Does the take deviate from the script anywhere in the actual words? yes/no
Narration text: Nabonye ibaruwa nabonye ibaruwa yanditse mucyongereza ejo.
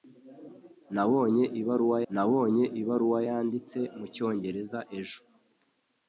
no